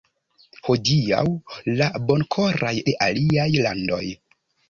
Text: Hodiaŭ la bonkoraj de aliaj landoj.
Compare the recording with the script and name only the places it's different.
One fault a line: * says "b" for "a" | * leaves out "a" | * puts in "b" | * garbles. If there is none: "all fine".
all fine